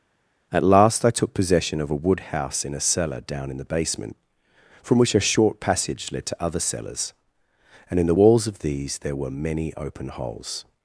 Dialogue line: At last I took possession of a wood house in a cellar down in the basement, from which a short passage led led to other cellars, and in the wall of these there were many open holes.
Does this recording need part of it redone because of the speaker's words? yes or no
yes